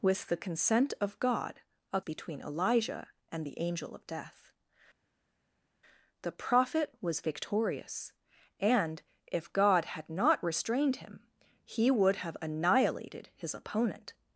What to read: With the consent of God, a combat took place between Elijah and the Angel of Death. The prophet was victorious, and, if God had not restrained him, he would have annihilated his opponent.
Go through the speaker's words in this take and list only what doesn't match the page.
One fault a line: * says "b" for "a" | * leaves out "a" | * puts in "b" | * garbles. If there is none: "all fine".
* leaves out "combat took place"